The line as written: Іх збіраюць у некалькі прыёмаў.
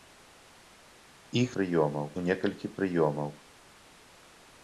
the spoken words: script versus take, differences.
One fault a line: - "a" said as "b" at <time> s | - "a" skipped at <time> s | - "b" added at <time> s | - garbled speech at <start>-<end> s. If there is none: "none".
- "збіраюць" said as "прыёмаў" at 1.6 s